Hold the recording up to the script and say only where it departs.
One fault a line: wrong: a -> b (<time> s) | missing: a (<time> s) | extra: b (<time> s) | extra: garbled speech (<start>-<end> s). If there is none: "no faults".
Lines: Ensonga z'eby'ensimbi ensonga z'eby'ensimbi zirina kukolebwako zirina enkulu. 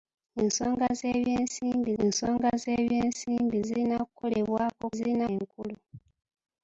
no faults